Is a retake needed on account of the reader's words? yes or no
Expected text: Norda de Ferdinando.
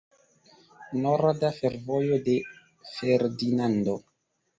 yes